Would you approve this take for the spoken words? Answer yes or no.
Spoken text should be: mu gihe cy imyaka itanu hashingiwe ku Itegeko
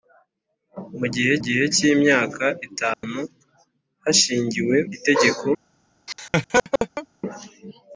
no